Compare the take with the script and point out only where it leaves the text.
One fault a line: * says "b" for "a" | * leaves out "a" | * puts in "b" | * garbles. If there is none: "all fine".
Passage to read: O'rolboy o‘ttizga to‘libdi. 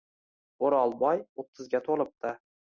all fine